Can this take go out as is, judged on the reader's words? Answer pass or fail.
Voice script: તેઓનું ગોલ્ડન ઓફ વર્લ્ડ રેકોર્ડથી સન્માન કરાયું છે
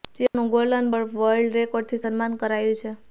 pass